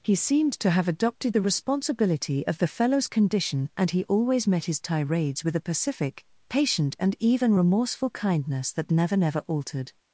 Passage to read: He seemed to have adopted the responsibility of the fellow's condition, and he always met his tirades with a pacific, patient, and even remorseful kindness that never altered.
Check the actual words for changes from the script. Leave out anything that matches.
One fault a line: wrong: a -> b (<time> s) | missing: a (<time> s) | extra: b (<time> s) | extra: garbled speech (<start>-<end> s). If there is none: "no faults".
extra: never (9.2 s)